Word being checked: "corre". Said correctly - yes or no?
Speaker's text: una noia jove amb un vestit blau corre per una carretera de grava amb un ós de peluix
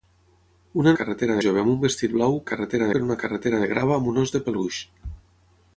no